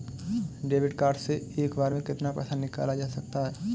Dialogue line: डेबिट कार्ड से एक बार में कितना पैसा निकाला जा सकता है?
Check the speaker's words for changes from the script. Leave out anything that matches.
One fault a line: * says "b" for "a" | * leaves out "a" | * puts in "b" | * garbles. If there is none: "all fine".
all fine